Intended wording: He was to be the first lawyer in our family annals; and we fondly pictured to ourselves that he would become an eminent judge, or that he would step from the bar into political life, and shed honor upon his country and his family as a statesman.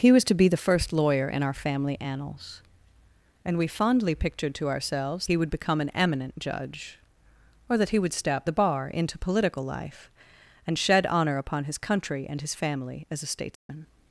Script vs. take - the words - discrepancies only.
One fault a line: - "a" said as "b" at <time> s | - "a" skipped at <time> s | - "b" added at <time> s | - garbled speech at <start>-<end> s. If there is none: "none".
- "that" skipped at 5.3 s
- "from" skipped at 8.5 s